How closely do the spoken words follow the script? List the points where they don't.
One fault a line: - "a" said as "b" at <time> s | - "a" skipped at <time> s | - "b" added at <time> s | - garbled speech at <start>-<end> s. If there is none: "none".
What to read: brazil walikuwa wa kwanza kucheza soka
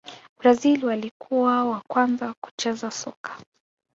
none